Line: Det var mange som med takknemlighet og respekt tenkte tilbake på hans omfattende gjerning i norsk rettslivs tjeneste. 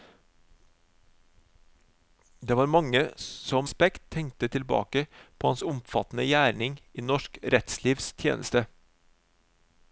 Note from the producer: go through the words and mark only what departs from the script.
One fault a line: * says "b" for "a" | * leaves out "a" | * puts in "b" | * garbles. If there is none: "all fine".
* leaves out "med takknemlighet og"